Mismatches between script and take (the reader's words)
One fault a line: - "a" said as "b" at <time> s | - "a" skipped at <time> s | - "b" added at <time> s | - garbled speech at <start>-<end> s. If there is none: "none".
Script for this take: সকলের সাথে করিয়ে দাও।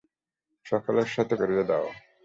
none